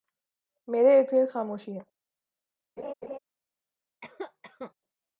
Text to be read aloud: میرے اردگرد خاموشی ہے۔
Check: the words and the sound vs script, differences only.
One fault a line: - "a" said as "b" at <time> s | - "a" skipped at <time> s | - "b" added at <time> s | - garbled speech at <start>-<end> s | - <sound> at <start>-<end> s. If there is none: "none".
- laugh at 2.8-3.2 s
- cough at 4.0-4.7 s